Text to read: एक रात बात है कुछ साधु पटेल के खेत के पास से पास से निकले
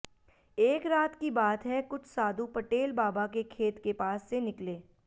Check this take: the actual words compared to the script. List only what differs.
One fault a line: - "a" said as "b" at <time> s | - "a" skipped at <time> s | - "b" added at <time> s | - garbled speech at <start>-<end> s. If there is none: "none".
- "की" added at 1.1 s
- "बाबा" added at 2.9 s
- "पास से" skipped at 4.4 s